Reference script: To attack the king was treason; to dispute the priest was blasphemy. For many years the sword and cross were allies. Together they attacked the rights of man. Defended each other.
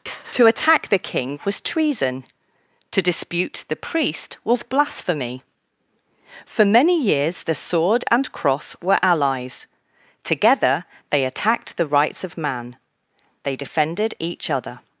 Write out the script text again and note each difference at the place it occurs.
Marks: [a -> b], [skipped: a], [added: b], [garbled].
To attack the king was treason; to dispute the priest was blasphemy. For many years the sword and cross were allies. Together they attacked the rights of man. [added: They] Defended each other.